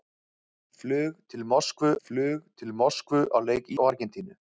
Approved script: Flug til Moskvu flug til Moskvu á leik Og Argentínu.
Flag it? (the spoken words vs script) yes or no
no